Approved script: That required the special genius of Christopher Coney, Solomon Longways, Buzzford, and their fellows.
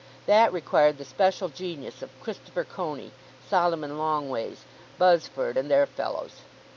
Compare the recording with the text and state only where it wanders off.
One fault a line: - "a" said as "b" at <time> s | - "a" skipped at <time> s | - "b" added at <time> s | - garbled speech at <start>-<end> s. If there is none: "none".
none